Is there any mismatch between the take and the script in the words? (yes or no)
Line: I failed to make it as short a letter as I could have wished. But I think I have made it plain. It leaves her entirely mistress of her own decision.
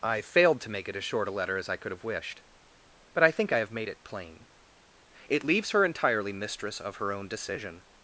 no